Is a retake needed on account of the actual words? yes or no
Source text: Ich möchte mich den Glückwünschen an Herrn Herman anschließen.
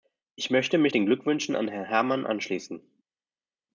no